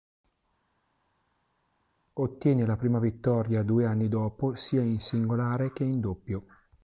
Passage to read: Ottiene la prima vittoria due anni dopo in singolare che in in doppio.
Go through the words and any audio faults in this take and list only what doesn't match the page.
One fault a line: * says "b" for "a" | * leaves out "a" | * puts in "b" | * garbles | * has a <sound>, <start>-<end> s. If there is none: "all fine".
* puts in "sia"
* leaves out "in"